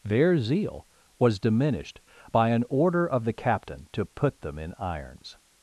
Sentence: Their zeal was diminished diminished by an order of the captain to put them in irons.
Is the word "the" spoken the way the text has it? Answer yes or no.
yes